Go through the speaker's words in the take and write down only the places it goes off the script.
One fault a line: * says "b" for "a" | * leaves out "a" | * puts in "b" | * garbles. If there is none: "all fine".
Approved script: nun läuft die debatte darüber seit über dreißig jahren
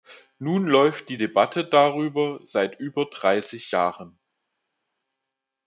all fine